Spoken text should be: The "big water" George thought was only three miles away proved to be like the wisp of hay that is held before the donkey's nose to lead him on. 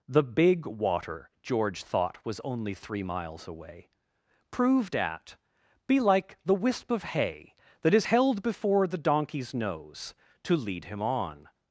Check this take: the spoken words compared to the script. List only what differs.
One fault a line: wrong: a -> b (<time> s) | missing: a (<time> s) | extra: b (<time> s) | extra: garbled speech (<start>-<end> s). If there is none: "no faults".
wrong: to -> at (5.0 s)